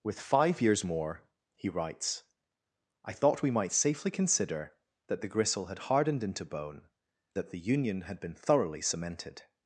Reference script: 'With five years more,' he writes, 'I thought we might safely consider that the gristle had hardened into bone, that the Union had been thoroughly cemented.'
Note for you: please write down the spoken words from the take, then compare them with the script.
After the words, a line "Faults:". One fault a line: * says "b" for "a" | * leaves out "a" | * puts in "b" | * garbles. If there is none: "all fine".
'With five years more,' he writes, 'I thought we might safely consider that the gristle had hardened into bone, that the Union had been thoroughly cemented.'
Faults:
all fine